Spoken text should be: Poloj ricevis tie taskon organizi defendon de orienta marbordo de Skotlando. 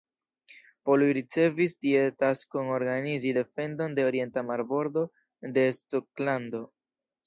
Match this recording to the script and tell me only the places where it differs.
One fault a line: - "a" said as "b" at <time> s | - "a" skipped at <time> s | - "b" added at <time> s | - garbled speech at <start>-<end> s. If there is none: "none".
none